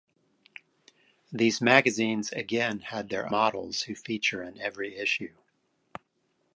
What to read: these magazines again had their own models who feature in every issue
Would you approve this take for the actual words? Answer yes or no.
no